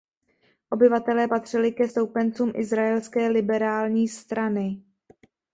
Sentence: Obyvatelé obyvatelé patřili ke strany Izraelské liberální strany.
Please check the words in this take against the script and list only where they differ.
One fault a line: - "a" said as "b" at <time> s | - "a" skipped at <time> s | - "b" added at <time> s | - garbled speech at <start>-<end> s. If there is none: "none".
- "obyvatelé" skipped at 1.3 s
- "strany" said as "stoupencům" at 1.8 s